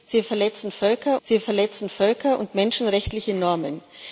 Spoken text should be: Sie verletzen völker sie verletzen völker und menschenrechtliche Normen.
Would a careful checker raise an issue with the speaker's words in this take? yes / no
no